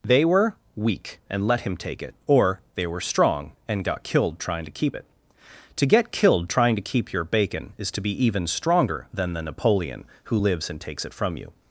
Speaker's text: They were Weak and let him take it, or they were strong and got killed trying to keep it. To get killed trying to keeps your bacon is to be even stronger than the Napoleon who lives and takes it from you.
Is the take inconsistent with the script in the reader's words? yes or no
yes